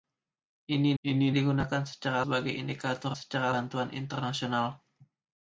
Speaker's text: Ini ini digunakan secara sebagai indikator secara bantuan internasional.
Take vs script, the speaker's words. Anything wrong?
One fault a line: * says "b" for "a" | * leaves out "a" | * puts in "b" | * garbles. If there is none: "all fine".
all fine